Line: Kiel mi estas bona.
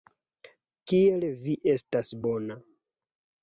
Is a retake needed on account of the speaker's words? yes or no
yes